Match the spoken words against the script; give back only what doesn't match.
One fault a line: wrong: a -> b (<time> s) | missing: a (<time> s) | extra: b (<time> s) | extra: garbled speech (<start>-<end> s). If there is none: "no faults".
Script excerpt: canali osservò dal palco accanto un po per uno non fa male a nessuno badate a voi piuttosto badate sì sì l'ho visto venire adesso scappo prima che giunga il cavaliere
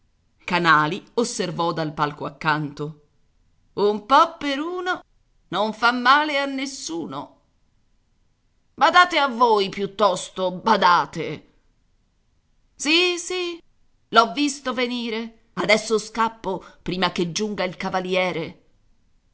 no faults